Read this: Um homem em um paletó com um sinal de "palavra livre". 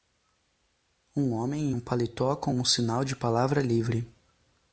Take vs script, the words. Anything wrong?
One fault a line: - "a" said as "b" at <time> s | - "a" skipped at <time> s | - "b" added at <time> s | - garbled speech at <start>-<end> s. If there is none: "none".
none